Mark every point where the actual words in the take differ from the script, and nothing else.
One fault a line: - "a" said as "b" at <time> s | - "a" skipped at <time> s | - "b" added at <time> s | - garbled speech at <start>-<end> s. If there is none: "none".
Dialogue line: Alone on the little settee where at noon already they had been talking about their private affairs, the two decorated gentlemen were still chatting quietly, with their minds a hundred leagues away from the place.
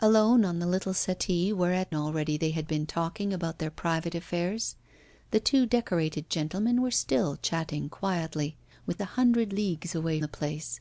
- "noon" skipped at 1.9 s
- "their minds" skipped at 9.0 s
- "from" skipped at 10.2 s